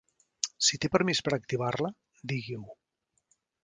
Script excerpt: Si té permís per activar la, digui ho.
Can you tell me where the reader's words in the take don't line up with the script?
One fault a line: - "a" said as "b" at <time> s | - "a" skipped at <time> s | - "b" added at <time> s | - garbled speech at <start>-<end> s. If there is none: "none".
none